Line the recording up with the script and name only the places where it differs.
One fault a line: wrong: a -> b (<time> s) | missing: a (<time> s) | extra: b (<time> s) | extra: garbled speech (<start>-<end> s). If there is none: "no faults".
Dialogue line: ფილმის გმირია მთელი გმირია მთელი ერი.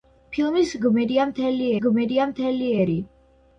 no faults